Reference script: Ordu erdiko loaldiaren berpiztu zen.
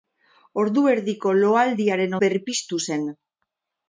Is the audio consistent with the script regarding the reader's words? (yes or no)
yes